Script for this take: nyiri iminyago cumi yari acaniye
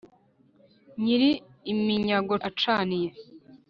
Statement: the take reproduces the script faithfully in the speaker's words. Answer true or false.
false